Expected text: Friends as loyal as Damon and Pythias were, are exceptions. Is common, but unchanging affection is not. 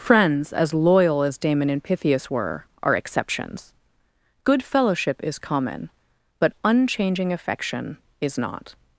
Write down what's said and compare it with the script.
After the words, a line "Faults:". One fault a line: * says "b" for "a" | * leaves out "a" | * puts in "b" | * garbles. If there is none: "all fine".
Friends as loyal as Damon and Pythias were, are exceptions. Good fellowship is common, but unchanging affection is not.
Faults:
* puts in "Good fellowship"